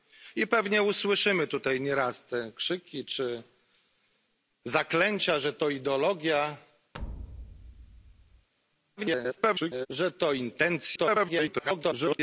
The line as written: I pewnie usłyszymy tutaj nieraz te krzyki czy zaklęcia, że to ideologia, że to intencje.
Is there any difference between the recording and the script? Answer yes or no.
yes